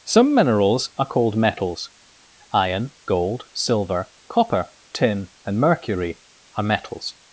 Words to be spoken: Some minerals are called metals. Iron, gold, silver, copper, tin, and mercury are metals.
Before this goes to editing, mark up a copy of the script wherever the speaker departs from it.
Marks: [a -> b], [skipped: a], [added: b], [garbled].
Some minerals are called metals. Iron, gold, silver, copper, tin, and mercury are metals.